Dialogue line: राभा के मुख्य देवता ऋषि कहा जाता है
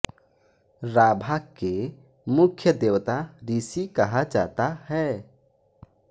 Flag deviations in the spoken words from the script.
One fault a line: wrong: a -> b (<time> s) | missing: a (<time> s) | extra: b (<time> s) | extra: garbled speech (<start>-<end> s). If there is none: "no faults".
no faults